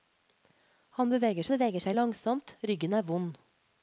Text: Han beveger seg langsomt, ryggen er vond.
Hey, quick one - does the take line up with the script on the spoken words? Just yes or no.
no